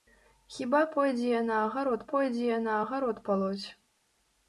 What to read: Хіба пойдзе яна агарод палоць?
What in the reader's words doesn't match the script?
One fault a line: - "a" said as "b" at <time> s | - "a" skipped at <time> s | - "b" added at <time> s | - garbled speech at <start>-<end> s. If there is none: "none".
- "пойдзе яна агарод" added at 2.1 s